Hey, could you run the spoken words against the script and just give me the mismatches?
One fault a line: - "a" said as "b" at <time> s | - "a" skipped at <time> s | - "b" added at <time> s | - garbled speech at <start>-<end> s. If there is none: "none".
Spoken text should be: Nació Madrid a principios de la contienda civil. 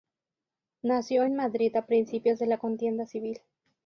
- "en" added at 1.2 s